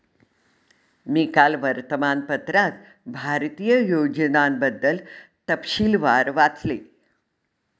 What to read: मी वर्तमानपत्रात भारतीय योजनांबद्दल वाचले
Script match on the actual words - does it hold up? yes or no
no